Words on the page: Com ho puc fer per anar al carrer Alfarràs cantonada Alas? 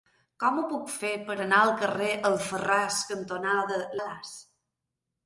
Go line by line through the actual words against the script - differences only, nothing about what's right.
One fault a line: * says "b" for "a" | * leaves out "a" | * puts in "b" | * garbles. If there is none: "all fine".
all fine